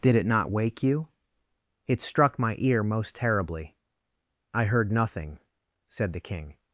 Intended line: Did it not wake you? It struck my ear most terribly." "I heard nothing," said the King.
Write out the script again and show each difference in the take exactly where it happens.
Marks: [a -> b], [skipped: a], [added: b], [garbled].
Did it not wake you? It struck my ear most terribly." "I heard nothing," said the King.